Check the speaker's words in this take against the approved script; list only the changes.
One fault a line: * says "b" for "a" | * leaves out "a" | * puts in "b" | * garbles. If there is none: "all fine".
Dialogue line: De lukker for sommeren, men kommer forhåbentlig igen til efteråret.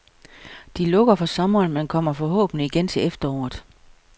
all fine